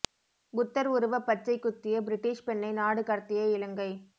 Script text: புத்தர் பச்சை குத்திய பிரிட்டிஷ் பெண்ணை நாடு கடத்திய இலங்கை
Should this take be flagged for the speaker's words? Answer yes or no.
yes